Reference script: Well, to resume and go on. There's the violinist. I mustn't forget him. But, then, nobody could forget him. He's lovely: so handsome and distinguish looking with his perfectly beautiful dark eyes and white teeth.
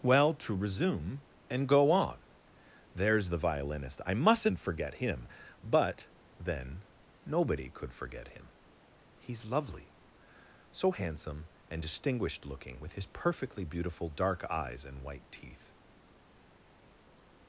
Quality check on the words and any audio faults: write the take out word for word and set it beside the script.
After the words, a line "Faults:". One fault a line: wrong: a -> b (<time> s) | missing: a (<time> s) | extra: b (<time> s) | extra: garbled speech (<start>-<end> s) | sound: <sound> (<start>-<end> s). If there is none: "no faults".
Well, to resume and go on. There's the violinist. I mustn't forget him. But, then, nobody could forget him. He's lovely: so handsome and distinguished looking with his perfectly beautiful dark eyes and white teeth.
Faults:
wrong: distinguish -> distinguished (11.8 s)